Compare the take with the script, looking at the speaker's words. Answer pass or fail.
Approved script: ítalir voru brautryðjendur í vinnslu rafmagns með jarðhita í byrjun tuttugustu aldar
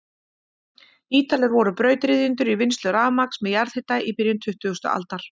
pass